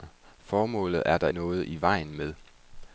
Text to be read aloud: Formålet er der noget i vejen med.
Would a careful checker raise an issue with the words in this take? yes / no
no